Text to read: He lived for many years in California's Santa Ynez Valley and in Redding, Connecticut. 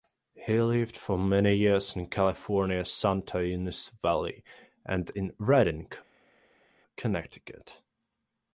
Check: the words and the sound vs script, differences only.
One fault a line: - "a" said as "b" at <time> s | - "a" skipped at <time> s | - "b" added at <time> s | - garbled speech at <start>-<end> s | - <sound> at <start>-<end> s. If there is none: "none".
none